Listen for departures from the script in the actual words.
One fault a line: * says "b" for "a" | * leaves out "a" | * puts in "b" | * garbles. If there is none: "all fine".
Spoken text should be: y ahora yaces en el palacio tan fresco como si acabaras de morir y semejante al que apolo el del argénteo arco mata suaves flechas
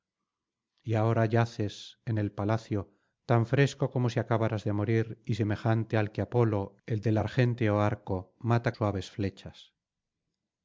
all fine